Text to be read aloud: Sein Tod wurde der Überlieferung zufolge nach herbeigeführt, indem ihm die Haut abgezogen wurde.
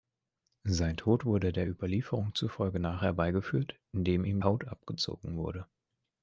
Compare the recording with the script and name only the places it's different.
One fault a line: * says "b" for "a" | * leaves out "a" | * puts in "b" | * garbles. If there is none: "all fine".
* leaves out "die"